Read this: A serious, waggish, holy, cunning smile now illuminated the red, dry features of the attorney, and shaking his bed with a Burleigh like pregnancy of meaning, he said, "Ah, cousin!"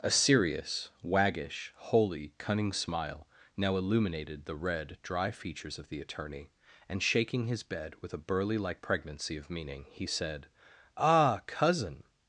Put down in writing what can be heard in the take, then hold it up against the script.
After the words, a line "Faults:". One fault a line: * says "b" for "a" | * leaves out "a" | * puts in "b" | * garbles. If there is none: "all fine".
A serious, waggish, holy, cunning smile now illuminated the red, dry features of the attorney, and shaking his bed with a Burleigh like pregnancy of meaning, he said, "Ah, cousin!"
Faults:
all fine